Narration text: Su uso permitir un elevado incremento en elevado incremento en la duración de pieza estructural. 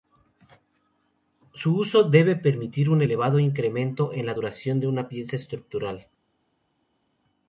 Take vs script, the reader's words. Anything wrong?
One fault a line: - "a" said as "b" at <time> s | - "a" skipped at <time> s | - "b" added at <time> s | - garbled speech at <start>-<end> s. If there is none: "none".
- "debe" added at 2.0 s
- "elevado incremento en" skipped at 4.3 s
- "una" added at 4.9 s